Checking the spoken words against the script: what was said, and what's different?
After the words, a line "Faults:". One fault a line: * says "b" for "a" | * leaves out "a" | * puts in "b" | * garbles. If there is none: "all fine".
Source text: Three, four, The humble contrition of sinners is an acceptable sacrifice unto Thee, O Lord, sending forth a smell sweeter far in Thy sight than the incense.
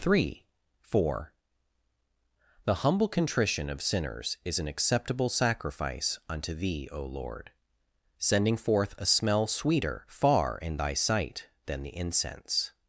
Three, four, The humble contrition of sinners is an acceptable sacrifice unto Thee, O Lord, sending forth a smell sweeter far in Thy sight than the incense.
Faults:
all fine